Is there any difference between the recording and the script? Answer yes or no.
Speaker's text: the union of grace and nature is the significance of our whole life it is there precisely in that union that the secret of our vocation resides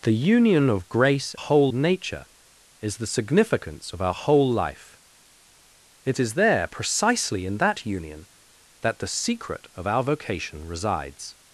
yes